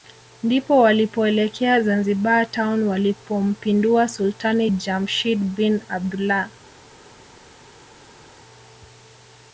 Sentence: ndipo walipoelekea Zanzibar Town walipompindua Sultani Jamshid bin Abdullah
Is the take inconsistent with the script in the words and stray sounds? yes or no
no